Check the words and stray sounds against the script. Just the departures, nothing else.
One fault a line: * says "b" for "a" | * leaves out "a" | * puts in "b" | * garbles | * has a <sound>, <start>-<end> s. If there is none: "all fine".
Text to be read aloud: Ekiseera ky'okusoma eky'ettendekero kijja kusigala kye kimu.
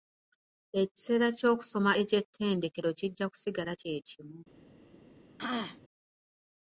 * has a throat clearing, 5.4-5.8 s